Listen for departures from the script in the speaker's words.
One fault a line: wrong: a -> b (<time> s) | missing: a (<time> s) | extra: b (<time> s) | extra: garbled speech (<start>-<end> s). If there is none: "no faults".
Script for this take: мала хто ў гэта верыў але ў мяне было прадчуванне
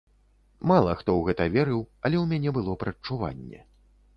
no faults